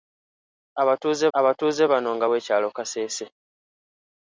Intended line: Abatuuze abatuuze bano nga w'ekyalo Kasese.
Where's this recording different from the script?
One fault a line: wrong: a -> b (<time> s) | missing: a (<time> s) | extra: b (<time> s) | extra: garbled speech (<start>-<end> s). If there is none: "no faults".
no faults